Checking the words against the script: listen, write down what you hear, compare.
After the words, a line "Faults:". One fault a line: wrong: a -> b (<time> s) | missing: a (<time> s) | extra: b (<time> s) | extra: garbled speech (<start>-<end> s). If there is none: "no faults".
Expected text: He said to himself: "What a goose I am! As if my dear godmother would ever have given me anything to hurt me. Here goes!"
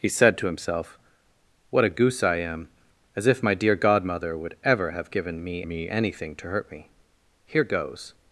He said to himself: "What a goose I am! As if my dear godmother would ever have given me me anything to hurt me. Here goes!"
Faults:
extra: me (5.7 s)